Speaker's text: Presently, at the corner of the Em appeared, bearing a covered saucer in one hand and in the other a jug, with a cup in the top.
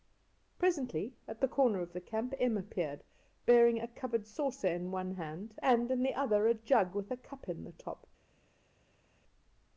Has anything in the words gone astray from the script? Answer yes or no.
yes